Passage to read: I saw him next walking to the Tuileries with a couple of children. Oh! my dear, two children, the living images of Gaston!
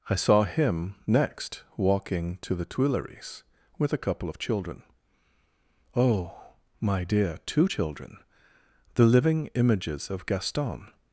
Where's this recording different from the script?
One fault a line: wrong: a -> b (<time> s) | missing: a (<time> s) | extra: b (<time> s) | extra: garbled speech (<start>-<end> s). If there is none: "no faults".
no faults